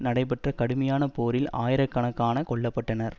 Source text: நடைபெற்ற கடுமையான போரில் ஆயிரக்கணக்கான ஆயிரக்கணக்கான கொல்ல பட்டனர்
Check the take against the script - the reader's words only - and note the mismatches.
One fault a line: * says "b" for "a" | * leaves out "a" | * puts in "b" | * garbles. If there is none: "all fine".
* leaves out "ஆயிரக்கணக்கான"